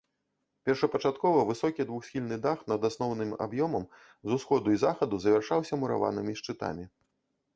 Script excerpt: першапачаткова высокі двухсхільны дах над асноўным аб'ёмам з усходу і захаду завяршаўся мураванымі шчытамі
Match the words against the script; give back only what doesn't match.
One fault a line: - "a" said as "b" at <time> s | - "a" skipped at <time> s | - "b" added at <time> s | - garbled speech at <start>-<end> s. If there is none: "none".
none